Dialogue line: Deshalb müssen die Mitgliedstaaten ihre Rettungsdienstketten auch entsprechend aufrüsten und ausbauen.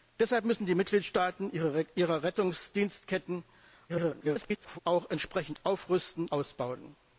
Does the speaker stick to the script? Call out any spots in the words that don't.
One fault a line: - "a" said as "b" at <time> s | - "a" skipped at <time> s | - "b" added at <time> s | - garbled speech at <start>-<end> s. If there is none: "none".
- garbled speech at 3.9-4.8 s
- "und" skipped at 6.3 s